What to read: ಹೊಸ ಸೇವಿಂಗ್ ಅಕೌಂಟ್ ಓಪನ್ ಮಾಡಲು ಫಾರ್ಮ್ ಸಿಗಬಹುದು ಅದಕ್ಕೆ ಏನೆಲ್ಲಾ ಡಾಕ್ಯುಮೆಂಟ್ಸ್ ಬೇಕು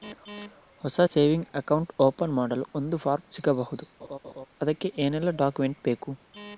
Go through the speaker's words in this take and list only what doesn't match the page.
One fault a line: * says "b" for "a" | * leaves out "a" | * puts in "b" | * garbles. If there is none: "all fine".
* puts in "ಒಂದು"